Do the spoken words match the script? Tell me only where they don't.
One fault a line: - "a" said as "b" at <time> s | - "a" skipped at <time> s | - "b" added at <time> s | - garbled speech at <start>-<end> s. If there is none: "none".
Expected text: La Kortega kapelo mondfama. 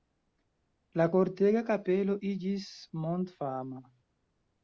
- "iĝis" added at 2.3 s